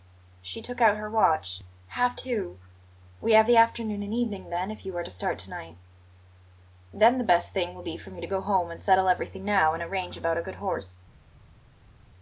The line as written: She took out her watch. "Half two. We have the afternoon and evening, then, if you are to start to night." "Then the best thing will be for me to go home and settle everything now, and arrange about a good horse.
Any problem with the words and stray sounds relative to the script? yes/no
no